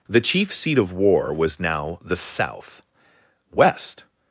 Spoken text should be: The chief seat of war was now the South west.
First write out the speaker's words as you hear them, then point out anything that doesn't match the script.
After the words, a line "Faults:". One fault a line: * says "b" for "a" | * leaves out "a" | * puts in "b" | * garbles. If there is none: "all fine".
The chief seat of war was now the South west.
Faults:
all fine